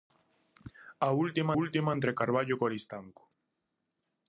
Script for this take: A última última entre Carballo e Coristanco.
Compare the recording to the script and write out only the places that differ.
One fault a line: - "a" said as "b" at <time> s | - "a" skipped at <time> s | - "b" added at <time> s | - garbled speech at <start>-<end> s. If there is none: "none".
none